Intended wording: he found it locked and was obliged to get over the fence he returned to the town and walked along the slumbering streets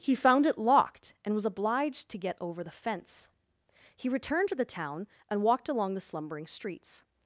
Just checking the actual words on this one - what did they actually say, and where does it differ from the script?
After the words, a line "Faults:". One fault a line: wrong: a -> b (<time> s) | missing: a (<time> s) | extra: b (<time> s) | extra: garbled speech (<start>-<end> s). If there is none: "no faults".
he found it locked and was obliged to get over the fence he returned to the town and walked along the slumbering streets
Faults:
no faults